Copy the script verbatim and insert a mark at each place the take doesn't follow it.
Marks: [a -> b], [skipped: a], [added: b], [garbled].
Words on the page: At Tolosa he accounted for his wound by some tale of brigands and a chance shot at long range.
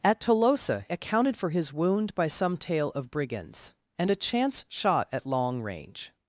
At Tolosa [skipped: he] accounted for his wound by some tale of brigands and a chance shot at long range.